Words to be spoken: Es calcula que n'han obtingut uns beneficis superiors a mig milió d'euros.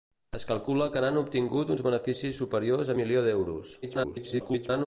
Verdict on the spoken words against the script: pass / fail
fail